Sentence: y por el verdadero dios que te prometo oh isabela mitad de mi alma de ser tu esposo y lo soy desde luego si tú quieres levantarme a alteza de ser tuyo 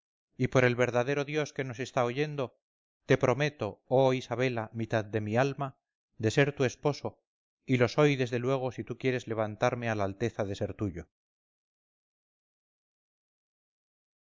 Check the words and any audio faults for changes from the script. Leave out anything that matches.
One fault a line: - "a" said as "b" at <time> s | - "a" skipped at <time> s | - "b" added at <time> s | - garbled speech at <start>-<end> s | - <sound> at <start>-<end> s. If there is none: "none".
- "nos está oyendo" added at 1.6 s
- "la" added at 9.9 s